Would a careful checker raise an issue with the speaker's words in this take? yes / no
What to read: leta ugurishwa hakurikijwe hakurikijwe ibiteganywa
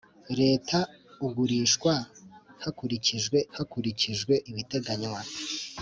no